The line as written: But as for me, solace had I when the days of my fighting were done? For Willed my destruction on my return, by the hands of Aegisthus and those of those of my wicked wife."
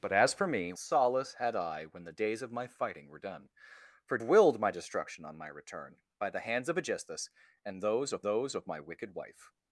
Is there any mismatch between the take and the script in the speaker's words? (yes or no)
no